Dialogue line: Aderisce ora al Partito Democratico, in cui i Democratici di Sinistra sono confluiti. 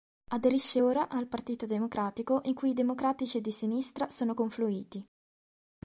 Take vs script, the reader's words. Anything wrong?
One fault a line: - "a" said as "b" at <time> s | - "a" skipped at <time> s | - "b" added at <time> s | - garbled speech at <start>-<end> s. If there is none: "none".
none